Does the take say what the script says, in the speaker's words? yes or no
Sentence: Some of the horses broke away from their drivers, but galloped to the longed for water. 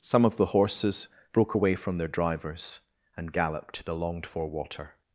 no